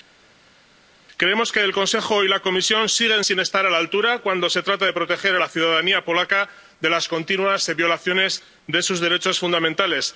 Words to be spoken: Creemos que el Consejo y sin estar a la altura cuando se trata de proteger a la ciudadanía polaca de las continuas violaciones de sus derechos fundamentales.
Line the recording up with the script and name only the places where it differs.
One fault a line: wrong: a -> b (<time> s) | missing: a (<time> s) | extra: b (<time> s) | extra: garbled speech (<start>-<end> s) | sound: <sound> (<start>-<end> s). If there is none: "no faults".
extra: la Comisión siguen (2.3 s)